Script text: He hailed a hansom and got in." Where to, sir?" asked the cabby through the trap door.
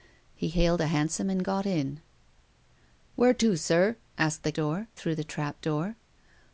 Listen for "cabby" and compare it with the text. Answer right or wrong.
wrong